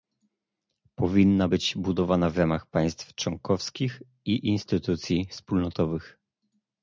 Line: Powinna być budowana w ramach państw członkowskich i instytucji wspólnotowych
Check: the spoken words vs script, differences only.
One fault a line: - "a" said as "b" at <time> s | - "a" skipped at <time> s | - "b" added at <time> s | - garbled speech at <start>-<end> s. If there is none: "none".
none